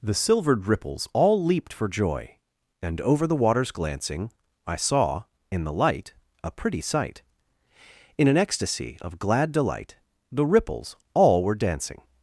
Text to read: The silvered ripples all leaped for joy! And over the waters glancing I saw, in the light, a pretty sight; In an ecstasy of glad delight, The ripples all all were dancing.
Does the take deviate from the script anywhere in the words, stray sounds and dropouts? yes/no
yes